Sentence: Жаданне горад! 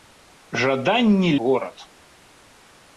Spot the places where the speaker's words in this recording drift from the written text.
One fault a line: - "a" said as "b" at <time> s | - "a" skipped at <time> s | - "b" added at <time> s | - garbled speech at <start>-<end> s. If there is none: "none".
none